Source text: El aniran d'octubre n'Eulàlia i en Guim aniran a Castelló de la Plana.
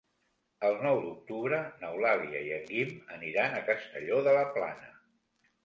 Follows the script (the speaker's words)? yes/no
no